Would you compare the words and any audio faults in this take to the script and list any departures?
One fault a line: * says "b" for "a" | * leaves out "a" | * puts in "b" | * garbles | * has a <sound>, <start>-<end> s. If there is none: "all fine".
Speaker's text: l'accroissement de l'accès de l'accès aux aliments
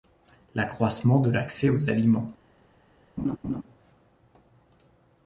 * leaves out "de l'accès"
* has a laugh, 3.2-3.6 s